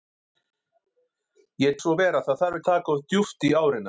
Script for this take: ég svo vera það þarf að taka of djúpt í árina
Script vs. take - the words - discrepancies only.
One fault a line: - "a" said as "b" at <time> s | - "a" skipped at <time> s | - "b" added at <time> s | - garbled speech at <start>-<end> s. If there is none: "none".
none